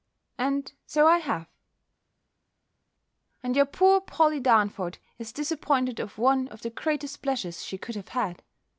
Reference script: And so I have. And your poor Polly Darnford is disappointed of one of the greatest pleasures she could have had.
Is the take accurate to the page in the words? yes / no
yes